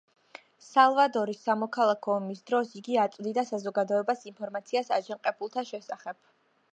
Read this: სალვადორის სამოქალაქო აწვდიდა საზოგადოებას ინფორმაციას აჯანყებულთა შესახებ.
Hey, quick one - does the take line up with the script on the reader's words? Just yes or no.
no